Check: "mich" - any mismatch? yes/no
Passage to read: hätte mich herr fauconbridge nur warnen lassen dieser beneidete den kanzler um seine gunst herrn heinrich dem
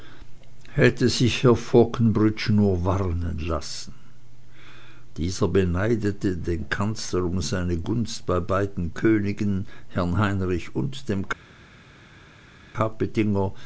yes